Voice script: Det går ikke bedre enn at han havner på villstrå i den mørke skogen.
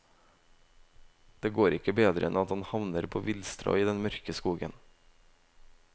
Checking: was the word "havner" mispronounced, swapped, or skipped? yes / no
no